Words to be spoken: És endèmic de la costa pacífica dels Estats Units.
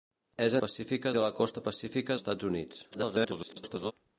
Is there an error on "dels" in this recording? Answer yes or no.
yes